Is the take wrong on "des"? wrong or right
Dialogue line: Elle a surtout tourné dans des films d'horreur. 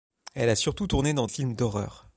wrong